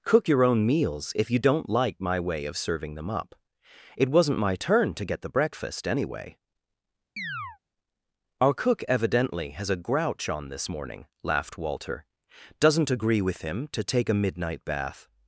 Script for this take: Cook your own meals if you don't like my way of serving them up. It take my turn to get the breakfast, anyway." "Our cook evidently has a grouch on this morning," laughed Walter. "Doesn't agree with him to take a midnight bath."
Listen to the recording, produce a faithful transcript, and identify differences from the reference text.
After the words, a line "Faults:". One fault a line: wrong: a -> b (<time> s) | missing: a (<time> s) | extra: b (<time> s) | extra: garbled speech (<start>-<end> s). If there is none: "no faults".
Cook your own meals if you don't like my way of serving them up. It wasn't my turn to get the breakfast, anyway." "Our cook evidently has a grouch on this morning," laughed Walter. "Doesn't agree with him to take a midnight bath."
Faults:
wrong: take -> wasn't (4.1 s)